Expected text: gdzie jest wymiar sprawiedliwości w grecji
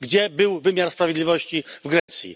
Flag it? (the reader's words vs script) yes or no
yes